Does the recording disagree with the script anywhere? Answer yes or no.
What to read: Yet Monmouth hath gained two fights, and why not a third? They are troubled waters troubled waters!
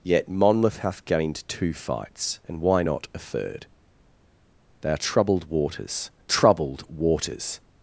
no